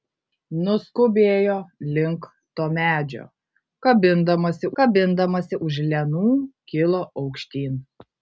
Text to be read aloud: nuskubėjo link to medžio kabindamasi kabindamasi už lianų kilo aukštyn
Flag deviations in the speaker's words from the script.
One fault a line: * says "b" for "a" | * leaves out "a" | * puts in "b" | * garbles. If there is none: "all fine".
all fine